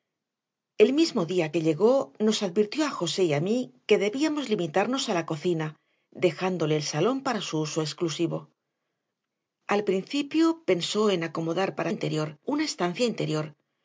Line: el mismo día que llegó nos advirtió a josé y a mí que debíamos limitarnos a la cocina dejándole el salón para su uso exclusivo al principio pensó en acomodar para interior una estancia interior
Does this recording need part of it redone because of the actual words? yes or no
no